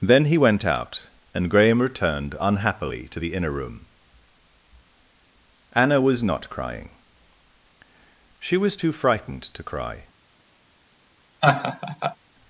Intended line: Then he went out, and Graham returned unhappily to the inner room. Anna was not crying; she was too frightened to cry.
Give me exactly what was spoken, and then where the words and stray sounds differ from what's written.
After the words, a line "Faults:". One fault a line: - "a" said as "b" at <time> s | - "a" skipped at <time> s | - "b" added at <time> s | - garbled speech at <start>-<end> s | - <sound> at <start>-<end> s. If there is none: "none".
Then he went out, and Graham returned unhappily to the inner room. Anna was not crying; she was too frightened to cry.
Faults:
- laugh at 11.4-12.2 s